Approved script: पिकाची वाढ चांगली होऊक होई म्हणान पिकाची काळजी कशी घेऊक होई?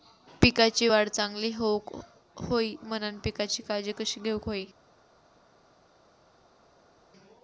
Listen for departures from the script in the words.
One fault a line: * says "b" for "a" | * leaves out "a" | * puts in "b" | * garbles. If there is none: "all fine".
all fine